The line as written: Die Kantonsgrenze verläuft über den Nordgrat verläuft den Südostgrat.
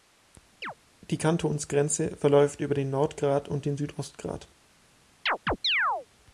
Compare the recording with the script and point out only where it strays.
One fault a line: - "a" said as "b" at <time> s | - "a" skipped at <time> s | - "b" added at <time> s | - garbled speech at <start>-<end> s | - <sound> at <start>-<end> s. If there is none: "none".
- chirp at 0.6-0.7 s
- "verläuft" said as "und" at 3.5 s
- chirp at 5.3-6.1 s